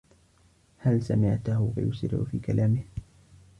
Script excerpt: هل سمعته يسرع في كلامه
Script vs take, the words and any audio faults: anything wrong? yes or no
no